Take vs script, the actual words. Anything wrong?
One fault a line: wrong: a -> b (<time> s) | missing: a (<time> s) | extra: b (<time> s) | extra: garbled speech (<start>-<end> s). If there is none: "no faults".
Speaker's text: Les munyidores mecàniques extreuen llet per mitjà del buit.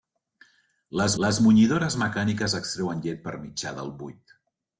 extra: les (1.2 s)